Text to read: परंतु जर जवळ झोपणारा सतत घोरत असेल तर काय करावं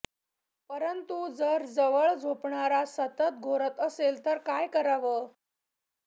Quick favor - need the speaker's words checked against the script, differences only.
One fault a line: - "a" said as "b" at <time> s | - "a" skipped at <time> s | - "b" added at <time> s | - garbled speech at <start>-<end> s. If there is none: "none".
none